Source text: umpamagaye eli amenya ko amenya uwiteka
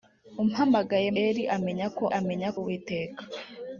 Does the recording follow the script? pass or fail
pass